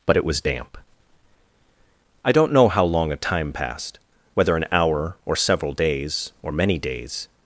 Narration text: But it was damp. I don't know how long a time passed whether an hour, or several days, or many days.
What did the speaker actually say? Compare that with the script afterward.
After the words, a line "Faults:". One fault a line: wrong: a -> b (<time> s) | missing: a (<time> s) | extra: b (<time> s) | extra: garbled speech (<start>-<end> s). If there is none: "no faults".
But it was damp. I don't know how long a time passed whether an hour, or several days, or many days.
Faults:
no faults